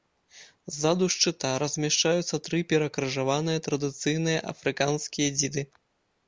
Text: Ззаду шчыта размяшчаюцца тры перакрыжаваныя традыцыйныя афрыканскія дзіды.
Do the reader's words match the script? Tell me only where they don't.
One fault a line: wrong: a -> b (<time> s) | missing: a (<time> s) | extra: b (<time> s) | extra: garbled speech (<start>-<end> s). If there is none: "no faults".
no faults